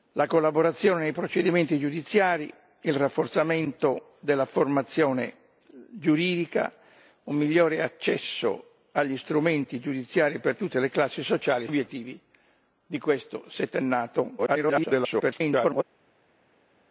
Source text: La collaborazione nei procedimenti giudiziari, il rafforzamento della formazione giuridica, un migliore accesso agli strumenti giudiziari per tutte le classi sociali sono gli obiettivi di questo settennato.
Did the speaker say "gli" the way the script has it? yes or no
no